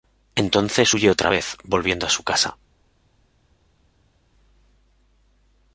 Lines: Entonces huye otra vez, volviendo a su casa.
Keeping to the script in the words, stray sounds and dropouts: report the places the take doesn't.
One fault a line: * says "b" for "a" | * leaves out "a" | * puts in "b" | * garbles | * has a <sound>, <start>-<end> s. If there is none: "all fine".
all fine